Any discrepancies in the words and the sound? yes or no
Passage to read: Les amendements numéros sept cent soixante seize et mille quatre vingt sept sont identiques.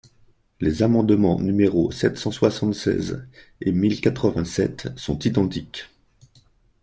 no